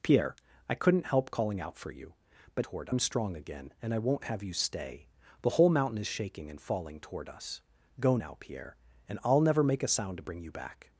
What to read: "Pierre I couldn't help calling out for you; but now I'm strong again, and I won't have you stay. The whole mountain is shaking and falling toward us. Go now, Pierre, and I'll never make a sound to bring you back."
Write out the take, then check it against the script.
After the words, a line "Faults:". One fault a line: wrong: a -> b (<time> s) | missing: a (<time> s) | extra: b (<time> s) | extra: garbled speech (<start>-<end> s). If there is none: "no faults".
"Pierre I couldn't help calling out for you; but toward I'm strong again, and I won't have you stay. The whole mountain is shaking and falling toward us. Go now, Pierre, and I'll never make a sound to bring you back."
Faults:
wrong: now -> toward (2.6 s)